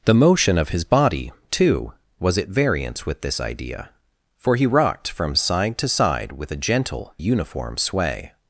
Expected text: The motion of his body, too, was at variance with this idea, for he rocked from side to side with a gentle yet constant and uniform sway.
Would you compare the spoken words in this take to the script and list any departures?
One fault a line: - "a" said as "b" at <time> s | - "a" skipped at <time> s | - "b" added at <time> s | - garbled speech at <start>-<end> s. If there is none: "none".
- "yet constant and" skipped at 7.1 s